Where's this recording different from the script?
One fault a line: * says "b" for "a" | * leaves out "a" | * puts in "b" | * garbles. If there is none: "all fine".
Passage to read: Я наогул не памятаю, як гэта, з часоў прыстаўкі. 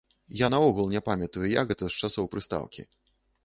all fine